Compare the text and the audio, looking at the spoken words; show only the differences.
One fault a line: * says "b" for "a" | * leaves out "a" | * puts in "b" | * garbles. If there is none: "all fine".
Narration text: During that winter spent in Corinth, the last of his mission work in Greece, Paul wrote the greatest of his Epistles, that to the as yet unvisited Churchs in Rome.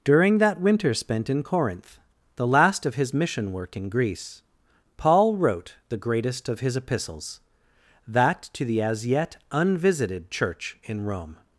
* says "Church" for "Churchs"